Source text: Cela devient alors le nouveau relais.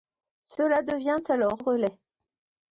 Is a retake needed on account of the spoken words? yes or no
yes